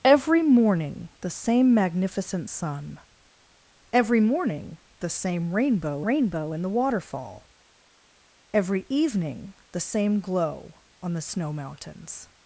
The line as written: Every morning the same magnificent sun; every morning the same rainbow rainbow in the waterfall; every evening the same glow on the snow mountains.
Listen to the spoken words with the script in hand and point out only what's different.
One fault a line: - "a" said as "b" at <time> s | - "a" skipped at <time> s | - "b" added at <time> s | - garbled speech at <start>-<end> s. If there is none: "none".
none